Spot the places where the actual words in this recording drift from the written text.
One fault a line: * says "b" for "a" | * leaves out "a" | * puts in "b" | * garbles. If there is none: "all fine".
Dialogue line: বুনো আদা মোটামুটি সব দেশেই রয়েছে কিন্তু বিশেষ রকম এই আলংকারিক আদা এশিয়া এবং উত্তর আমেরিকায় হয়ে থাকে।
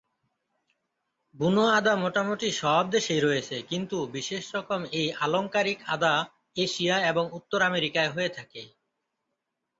all fine